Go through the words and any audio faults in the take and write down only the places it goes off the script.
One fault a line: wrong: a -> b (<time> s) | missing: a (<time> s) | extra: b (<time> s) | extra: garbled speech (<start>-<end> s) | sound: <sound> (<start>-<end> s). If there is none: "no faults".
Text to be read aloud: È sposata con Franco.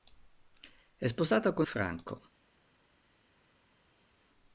no faults